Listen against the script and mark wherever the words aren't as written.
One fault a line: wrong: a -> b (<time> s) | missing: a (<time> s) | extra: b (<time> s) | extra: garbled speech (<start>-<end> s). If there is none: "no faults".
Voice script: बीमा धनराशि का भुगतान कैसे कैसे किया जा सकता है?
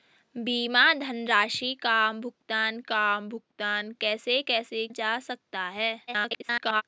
extra: का भुगतान (2.8 s)
missing: किया (4.9 s)
extra: garbled speech (6.1-6.8 s)